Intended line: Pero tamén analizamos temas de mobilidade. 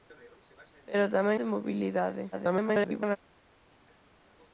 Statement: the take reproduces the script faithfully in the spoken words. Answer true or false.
false